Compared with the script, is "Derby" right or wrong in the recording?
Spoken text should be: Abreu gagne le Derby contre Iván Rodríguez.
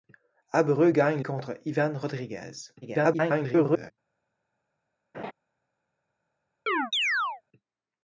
wrong